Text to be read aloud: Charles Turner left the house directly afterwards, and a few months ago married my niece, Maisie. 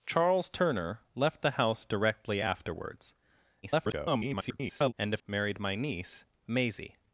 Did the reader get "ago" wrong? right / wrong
wrong